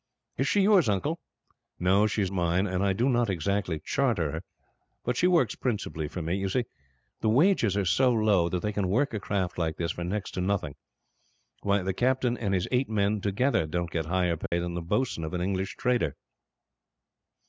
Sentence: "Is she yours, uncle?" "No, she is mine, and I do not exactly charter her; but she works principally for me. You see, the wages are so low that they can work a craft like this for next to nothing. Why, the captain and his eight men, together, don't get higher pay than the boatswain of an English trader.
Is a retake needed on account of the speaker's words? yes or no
no